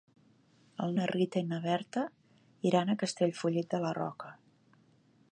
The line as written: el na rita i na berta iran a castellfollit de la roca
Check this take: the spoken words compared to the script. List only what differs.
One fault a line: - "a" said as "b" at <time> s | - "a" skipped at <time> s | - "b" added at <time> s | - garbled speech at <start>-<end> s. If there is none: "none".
none